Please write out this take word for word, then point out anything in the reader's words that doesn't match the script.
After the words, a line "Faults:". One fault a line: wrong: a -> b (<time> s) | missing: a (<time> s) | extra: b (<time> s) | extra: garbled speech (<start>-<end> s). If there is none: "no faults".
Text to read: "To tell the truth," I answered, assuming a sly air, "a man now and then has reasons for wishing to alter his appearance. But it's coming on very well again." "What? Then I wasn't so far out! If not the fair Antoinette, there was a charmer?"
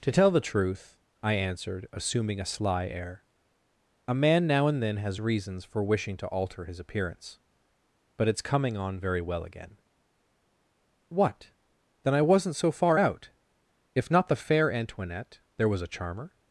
"To tell the truth," I answered, assuming a sly air, "a man now and then has reasons for wishing to alter his appearance. But it's coming on very well again." "What? Then I wasn't so far out! If not the fair Antoinette, there was a charmer?"
Faults:
no faults